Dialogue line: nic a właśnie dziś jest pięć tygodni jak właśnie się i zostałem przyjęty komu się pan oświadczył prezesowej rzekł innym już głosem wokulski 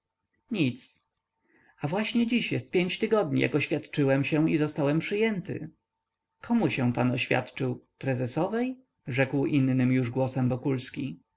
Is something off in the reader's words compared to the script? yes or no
yes